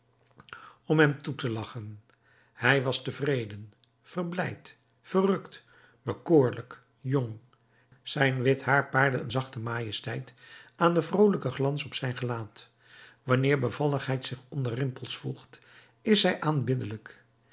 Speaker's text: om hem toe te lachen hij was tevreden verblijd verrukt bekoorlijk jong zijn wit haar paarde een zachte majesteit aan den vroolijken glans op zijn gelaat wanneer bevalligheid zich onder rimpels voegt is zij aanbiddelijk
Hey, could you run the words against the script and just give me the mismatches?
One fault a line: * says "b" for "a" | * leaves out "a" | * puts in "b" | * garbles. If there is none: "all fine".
all fine